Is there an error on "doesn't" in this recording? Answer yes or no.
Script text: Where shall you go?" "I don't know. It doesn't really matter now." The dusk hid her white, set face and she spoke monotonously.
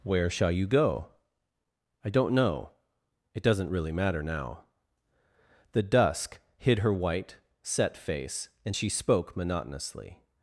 no